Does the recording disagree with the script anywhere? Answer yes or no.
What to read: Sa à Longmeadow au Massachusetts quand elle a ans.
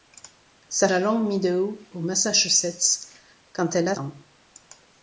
no